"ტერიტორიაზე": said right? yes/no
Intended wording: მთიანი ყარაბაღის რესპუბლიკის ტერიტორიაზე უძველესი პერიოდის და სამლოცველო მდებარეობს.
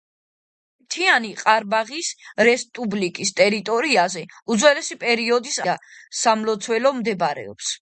yes